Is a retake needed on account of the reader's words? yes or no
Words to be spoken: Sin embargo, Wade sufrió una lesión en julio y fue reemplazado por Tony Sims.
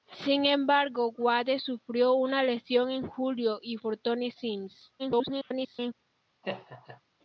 yes